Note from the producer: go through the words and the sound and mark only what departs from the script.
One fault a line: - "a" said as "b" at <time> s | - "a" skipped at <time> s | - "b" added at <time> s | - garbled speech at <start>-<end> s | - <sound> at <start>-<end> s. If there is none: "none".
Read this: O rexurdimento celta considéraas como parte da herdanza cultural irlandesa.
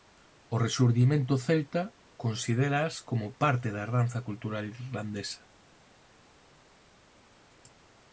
none